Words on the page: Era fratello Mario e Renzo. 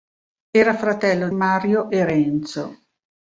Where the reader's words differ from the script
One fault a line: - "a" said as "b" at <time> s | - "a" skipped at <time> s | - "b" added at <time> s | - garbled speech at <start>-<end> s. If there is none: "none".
none